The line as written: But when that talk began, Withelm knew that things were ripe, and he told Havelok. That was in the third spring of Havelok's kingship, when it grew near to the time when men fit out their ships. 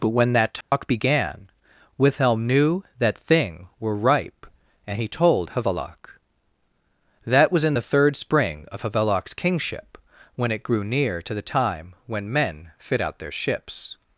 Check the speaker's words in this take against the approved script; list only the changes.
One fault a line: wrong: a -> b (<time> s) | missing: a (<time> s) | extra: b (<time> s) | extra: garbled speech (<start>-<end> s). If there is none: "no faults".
wrong: things -> thing (3.2 s)